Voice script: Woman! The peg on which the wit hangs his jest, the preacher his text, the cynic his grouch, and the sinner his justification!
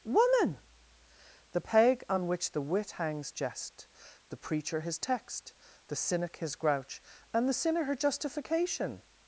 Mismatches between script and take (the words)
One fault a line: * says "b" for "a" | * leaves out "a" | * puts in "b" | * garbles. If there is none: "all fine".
* leaves out "his"
* says "her" for "his"